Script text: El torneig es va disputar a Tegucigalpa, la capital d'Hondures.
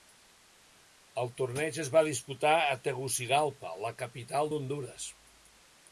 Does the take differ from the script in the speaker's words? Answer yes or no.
no